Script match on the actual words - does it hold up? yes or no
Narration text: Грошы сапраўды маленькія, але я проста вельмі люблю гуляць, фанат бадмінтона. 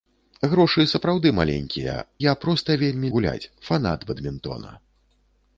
no